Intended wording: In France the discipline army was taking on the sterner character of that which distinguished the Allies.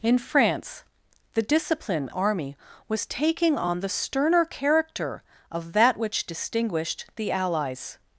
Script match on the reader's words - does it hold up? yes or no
yes